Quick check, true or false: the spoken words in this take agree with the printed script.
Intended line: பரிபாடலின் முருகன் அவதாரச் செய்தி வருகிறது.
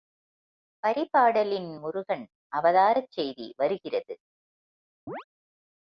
true